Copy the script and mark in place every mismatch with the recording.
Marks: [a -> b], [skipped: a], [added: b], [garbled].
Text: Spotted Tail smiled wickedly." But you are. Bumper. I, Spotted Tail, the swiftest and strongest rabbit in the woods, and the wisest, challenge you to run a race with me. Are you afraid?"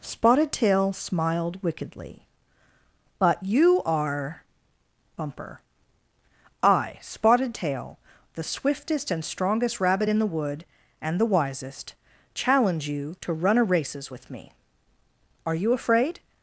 Spotted Tail smiled wickedly." But you are. Bumper. I, Spotted Tail, the swiftest and strongest rabbit in the [woods, -> wood] and the wisest, challenge you to run a [race -> races] with me. Are you afraid?"